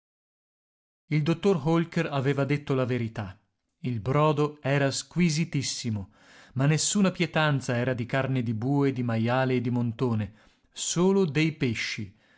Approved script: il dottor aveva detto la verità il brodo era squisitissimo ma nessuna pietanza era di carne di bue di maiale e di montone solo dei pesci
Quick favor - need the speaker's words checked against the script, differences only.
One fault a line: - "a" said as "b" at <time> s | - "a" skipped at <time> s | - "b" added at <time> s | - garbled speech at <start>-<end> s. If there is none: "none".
- "holker" added at 1.7 s